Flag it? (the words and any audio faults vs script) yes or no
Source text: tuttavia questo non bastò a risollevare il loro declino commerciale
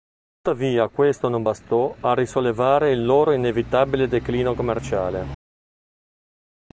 yes